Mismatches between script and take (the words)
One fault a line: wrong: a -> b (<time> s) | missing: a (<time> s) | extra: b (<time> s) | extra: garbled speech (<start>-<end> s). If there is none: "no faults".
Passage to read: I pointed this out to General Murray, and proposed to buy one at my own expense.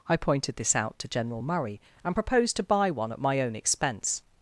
no faults